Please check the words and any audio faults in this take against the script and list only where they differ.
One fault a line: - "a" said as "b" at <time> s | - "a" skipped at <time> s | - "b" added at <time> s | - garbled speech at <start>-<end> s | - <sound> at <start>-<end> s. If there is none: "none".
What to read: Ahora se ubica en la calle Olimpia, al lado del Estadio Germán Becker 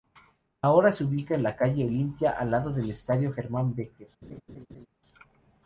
- laugh at 4.2-4.9 s